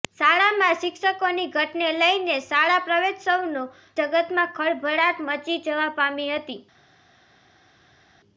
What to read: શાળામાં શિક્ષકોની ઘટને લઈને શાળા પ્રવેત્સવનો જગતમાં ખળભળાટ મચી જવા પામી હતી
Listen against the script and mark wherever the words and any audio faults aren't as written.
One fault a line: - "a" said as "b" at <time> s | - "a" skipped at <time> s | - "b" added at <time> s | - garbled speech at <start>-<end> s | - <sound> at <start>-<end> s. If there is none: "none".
none